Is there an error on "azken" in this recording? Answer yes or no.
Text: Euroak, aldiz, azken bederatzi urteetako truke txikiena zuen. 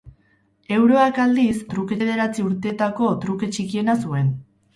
yes